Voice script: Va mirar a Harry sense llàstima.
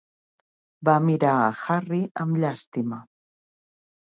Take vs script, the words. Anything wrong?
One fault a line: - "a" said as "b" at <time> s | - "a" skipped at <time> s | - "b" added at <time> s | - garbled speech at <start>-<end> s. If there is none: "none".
- "sense" said as "amb" at 2.2 s